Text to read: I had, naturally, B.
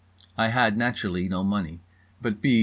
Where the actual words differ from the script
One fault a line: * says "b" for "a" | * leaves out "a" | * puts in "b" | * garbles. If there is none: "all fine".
* puts in "no money but"